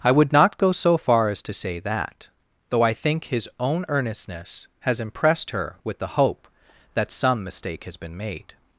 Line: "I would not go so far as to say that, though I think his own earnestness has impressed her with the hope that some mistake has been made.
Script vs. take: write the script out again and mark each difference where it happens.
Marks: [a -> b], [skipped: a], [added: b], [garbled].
"I would not go so far as to say that, though I think his own earnestness has impressed her with the hope that some mistake has been made.